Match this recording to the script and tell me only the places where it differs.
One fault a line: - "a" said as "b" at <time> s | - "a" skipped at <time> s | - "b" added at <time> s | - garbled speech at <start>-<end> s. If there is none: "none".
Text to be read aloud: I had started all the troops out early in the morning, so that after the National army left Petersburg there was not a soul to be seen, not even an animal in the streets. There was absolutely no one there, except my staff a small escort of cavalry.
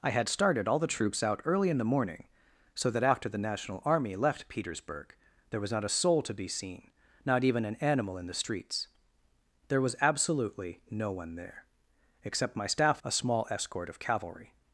none